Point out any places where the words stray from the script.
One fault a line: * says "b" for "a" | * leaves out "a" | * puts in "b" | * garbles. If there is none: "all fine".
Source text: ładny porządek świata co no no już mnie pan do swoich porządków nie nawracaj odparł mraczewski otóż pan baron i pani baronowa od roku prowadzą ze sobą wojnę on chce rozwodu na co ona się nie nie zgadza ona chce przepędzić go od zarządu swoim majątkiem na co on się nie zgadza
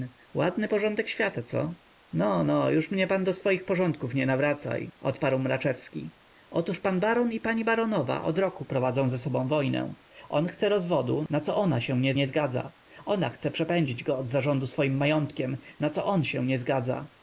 all fine